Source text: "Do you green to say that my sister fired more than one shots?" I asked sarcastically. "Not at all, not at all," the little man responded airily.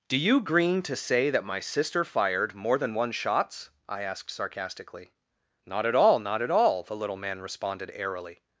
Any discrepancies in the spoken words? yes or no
no